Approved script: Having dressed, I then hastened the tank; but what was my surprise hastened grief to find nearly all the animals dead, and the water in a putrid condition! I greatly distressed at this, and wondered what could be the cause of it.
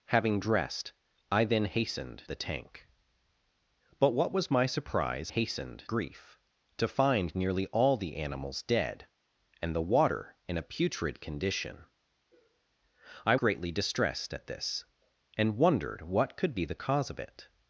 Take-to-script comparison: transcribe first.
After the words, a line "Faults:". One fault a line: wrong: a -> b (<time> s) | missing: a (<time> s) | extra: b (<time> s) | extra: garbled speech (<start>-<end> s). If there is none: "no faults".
Having dressed, I then hastened the tank; but what was my surprise hastened grief to find nearly all the animals dead, and the water in a putrid condition! I greatly distressed at this, and wondered what could be the cause of it.
Faults:
no faults